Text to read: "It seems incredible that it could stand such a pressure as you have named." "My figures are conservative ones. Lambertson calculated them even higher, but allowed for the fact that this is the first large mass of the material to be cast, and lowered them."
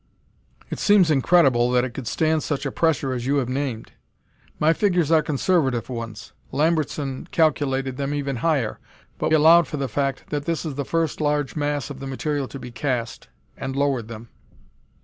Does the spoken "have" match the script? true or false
true